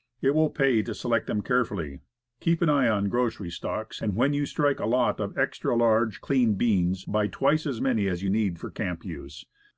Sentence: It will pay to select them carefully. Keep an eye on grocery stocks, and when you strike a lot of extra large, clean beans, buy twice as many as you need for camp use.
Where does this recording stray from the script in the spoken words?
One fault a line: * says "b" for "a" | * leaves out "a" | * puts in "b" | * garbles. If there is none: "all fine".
all fine